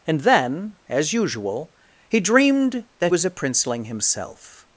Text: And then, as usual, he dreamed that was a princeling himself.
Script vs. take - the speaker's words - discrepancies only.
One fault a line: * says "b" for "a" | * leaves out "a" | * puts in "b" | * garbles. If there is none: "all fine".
all fine